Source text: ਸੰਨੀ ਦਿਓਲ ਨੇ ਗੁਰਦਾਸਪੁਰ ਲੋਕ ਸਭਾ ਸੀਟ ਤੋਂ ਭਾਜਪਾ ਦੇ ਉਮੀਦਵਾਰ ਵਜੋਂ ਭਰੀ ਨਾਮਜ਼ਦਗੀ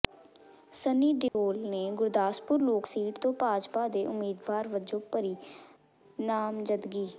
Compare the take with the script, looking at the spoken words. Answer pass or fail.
fail